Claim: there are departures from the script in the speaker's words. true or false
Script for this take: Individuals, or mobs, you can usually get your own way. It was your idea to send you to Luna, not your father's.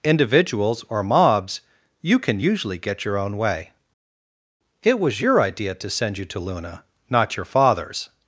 false